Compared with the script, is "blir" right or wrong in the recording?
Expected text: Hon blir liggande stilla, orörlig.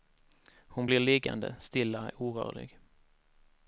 right